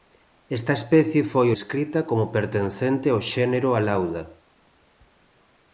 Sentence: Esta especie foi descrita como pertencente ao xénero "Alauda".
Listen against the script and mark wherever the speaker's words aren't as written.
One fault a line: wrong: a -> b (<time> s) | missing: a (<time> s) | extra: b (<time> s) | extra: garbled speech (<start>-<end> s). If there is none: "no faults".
no faults